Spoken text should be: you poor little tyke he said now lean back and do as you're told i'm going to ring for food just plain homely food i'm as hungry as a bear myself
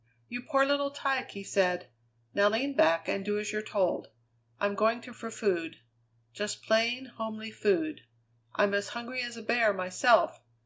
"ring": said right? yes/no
no